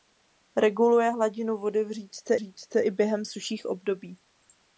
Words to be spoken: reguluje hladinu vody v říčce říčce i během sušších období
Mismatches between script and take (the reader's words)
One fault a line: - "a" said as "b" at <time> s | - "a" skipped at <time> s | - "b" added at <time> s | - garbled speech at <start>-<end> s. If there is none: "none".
none